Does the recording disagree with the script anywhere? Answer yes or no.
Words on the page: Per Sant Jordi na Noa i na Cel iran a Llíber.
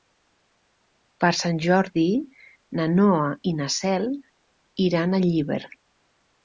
no